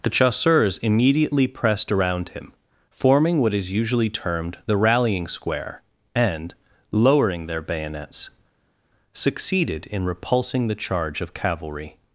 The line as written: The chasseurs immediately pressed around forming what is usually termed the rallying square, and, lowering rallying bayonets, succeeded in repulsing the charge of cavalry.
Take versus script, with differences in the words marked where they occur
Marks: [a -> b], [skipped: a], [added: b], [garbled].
The chasseurs immediately pressed around [added: him] forming what is usually termed the rallying square, and, lowering [rallying -> their] bayonets, succeeded in repulsing the charge of cavalry.